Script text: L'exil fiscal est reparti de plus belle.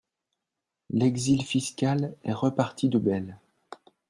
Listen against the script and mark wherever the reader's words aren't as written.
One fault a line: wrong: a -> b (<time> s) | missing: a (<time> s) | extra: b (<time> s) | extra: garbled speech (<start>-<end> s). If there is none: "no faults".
missing: plus (3.0 s)